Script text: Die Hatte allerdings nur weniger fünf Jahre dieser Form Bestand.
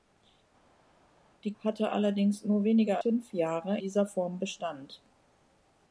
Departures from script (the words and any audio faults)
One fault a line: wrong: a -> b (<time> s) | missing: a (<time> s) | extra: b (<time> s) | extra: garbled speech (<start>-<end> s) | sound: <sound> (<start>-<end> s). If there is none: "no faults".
no faults